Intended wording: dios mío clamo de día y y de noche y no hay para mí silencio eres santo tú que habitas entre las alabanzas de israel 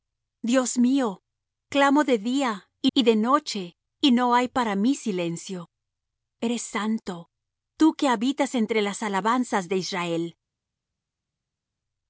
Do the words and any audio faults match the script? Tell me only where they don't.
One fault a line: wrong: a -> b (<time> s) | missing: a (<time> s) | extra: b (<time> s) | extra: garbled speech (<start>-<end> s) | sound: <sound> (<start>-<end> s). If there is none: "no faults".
no faults